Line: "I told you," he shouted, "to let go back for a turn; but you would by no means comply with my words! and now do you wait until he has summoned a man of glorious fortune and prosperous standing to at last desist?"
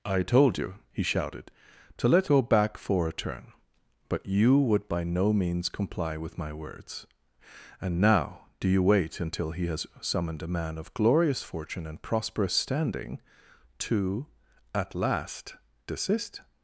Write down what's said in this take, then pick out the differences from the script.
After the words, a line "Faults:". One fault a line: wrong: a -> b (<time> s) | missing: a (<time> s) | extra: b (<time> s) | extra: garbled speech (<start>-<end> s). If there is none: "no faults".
"I told you," he shouted, "to let go back for a turn; but you would by no means comply with my words! and now do you wait until he has summoned a man of glorious fortune and prosperous standing to at last desist?"
Faults:
no faults